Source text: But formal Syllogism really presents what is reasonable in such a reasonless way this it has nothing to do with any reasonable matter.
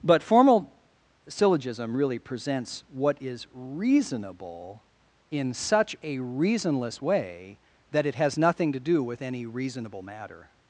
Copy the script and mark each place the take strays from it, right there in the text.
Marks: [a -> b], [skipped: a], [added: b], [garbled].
But formal Syllogism really presents what is reasonable in such a reasonless way [this -> that] it has nothing to do with any reasonable matter.